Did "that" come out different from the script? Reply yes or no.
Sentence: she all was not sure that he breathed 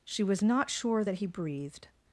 no